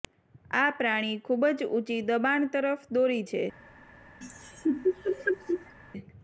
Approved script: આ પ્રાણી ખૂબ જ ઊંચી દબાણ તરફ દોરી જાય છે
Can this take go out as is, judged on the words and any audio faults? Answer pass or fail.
fail